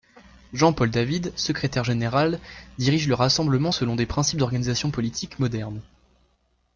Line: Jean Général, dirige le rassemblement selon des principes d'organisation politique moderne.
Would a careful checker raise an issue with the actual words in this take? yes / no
yes